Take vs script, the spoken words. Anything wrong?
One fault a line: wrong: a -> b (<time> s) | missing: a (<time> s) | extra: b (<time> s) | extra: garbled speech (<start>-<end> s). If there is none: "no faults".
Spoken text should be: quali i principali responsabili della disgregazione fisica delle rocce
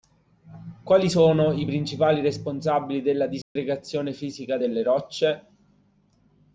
extra: sono (1.1 s)